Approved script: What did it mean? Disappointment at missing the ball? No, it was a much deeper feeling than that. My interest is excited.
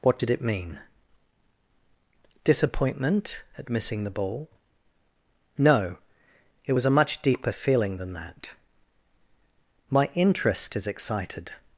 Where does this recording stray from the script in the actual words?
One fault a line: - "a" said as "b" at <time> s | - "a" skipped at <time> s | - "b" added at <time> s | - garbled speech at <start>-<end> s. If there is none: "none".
none